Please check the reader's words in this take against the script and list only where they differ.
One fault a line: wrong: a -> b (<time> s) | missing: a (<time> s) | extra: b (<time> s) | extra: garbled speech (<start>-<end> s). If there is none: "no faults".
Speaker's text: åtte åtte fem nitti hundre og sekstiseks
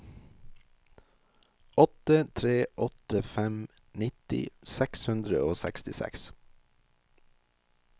extra: tre (2.4 s)
extra: seks (4.8 s)